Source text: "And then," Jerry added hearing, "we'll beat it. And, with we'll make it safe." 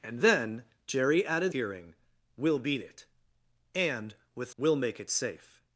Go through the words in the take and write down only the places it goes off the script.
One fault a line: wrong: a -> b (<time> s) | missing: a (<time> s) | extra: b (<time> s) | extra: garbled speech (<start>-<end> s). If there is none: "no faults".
no faults